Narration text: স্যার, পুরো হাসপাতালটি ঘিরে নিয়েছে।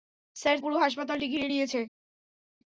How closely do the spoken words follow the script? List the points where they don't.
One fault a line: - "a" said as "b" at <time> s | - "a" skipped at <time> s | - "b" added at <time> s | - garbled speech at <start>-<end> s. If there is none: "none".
none